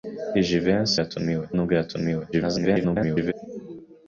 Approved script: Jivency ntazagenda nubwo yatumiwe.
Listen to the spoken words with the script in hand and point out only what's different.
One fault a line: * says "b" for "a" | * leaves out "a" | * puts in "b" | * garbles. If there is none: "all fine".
* says "yatumiwe" for "ntazagenda"
* garbles